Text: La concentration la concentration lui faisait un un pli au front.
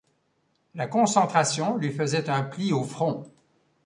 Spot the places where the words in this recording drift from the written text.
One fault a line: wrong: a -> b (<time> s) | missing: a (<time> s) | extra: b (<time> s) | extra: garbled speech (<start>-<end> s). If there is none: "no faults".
missing: la concentration (1.8 s)
missing: un (2.4 s)